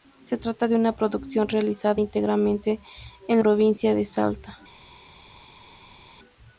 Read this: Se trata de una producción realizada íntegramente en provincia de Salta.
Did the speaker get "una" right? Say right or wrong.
right